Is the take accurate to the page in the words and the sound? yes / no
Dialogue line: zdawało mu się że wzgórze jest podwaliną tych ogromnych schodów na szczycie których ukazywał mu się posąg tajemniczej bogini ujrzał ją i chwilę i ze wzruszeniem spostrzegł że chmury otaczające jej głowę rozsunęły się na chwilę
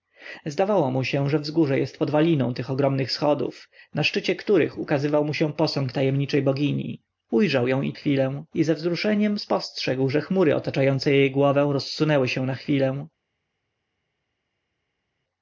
yes